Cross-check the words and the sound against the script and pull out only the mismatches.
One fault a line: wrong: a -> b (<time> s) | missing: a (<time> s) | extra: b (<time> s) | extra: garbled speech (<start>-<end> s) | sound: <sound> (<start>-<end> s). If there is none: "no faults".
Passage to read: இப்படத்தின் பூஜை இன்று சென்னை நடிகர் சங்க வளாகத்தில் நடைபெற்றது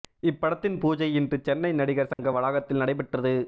sound: dropout (2.1-2.2 s)